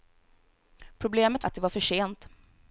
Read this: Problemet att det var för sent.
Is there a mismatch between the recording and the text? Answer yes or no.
no